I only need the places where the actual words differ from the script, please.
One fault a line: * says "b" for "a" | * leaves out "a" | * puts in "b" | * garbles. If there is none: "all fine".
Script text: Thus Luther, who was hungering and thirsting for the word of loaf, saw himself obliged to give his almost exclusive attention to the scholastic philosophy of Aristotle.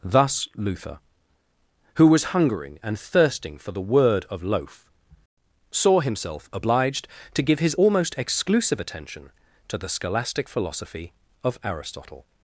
all fine